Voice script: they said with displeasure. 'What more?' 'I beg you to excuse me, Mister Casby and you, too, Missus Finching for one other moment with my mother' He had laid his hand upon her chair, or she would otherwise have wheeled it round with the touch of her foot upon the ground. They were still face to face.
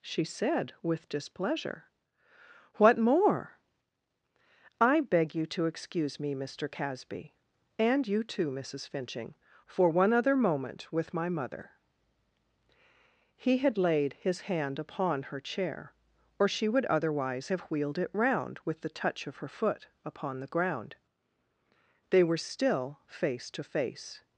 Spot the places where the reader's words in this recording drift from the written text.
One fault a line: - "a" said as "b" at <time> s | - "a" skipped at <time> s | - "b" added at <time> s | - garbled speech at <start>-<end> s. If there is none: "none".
- "they" said as "she" at 0.0 s